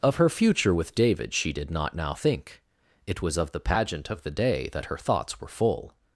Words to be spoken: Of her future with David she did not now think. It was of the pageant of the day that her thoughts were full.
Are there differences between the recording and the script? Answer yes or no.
no